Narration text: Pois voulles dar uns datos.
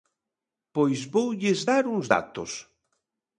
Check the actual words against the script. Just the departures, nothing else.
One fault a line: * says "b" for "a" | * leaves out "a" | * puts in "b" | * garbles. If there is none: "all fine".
all fine